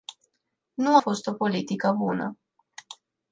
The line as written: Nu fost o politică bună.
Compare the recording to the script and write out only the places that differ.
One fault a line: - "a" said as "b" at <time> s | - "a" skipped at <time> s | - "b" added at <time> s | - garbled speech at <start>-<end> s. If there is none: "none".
none